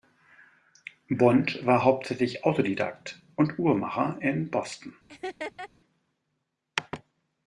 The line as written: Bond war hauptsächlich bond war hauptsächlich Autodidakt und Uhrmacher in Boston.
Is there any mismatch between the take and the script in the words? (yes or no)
yes